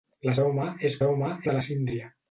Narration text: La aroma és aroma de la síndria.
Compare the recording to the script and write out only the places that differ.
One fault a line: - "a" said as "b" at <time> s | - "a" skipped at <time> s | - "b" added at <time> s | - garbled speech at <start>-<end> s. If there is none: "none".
none